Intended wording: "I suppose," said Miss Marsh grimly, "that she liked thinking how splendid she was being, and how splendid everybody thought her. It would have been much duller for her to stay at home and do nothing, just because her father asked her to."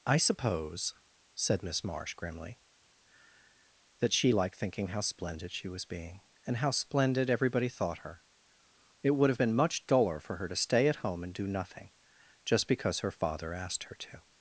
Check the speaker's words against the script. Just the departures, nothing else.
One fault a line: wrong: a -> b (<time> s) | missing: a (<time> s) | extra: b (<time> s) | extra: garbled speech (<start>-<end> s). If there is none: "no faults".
no faults